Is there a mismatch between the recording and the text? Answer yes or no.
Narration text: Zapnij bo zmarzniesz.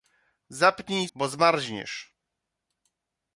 no